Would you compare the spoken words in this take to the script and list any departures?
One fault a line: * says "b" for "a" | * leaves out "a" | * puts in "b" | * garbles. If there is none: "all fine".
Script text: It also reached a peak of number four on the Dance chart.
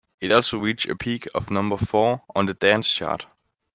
all fine